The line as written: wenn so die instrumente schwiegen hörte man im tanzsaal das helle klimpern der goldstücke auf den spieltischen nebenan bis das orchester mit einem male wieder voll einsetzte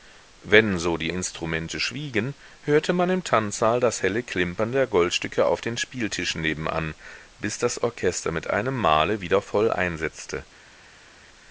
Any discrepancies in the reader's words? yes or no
no